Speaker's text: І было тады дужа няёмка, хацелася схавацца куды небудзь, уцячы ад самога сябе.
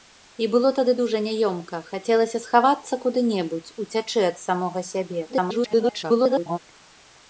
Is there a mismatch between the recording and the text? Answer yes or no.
yes